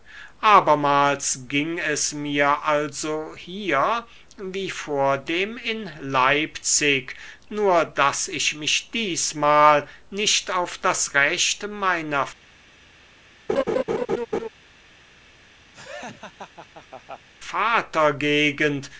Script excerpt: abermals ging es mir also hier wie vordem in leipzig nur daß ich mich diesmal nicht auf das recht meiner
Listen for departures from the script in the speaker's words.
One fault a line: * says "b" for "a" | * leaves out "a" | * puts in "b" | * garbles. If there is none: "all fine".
all fine